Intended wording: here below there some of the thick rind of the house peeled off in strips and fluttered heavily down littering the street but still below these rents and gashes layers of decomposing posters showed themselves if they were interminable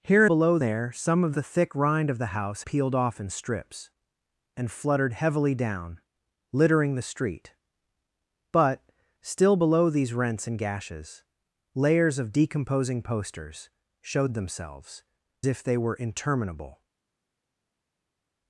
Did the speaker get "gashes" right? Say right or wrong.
right